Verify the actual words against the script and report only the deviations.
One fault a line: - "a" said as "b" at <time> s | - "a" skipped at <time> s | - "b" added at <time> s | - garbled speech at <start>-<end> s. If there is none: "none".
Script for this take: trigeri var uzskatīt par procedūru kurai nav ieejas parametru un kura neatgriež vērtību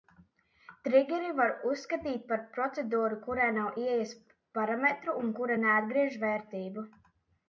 none